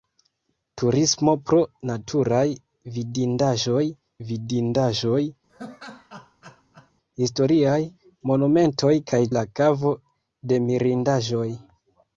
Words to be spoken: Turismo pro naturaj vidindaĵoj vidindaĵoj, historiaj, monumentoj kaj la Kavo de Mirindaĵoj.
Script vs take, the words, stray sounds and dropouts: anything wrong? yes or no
yes